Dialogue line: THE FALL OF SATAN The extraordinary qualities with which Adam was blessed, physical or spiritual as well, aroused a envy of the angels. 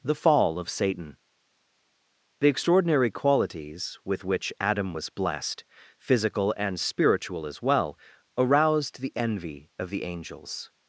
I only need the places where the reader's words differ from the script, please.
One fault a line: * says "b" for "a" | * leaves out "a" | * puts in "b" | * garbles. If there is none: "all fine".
* says "and" for "or"
* says "the" for "a"